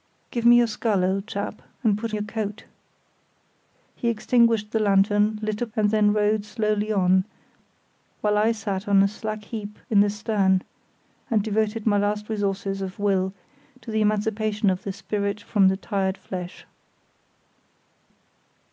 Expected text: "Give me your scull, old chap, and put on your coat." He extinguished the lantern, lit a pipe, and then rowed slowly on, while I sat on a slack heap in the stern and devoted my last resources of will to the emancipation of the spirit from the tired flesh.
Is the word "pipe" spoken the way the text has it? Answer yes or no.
no